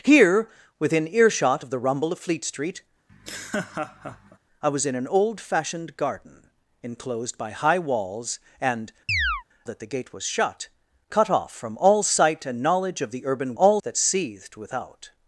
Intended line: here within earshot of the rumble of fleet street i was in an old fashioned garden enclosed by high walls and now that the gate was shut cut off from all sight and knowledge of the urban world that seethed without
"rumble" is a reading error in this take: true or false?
false